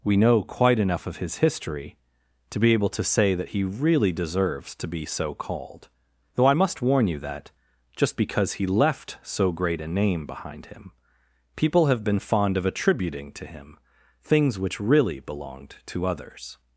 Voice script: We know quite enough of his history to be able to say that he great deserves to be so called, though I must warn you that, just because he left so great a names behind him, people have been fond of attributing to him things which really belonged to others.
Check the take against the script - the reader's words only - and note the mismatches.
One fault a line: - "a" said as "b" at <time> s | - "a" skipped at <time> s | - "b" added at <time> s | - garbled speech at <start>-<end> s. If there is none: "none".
- "great" said as "really" at 3.6 s
- "names" said as "name" at 9.9 s